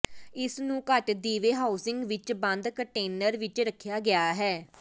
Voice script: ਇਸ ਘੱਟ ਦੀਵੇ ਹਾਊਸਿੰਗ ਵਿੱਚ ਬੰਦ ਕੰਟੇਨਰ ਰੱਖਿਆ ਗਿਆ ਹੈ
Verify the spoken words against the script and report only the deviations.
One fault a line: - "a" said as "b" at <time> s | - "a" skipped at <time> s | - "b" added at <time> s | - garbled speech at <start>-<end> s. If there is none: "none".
- "ਨੂੰ" added at 0.6 s
- "ਵਿੱਚ" added at 3.4 s